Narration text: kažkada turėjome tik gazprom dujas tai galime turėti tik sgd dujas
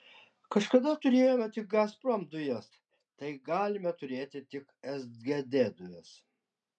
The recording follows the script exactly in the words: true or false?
true